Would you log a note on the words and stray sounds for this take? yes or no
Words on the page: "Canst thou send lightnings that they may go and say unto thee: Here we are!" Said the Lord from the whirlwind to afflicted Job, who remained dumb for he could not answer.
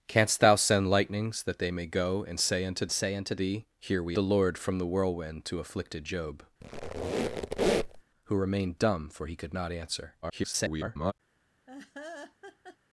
yes